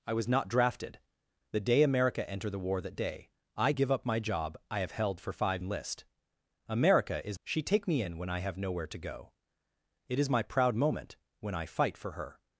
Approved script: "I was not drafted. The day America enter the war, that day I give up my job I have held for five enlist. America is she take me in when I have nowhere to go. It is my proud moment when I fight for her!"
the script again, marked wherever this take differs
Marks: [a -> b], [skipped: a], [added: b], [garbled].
"I was not drafted. The day America enter the war, that day I give up my job I have held for five enlist. America is she take me in when I have nowhere to go. It is my proud moment when I fight for her!"